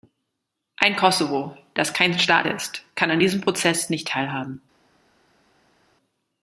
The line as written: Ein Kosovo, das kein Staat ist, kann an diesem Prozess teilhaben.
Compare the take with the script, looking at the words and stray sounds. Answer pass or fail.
fail